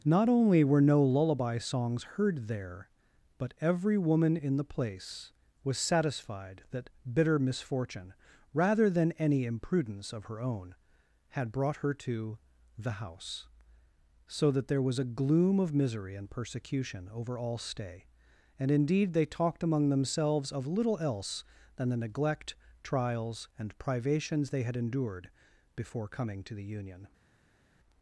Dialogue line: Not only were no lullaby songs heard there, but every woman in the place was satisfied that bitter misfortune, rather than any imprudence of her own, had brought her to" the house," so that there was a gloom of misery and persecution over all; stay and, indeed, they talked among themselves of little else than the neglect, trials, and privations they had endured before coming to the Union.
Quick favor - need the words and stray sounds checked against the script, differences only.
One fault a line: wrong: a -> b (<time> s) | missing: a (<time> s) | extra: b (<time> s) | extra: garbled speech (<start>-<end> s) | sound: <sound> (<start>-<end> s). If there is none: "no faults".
no faults